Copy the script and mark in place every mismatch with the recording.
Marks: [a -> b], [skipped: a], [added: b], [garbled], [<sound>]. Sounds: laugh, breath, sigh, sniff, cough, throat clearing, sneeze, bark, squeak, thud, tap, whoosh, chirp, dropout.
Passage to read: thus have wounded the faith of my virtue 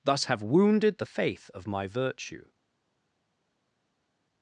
thus have wounded the faith of my virtue